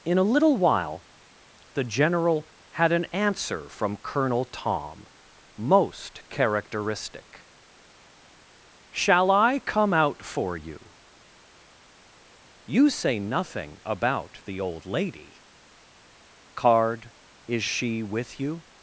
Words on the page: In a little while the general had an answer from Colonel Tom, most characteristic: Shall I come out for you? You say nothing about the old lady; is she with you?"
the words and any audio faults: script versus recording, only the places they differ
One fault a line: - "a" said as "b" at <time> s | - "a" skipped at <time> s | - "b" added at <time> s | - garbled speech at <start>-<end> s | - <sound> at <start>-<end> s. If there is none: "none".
- "card" added at 16.5 s